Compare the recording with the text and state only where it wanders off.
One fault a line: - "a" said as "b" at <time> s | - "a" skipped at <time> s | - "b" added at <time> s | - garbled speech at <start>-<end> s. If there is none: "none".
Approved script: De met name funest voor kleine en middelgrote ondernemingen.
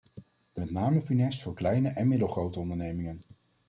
none